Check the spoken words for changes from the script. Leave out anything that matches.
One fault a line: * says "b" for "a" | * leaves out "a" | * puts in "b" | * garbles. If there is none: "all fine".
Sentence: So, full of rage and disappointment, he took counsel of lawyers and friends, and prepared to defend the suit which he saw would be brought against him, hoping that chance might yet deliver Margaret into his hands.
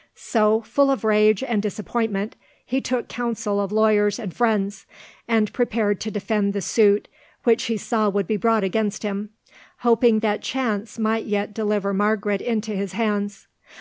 all fine